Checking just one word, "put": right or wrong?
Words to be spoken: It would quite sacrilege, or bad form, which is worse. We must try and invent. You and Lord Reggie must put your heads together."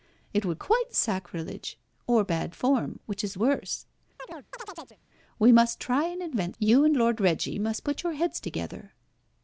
right